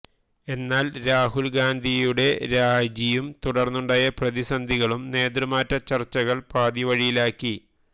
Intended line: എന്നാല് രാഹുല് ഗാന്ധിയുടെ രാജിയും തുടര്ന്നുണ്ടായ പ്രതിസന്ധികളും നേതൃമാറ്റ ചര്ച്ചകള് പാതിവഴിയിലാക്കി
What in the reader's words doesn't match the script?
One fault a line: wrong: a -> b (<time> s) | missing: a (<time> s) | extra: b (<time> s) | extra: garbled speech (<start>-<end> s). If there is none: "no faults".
no faults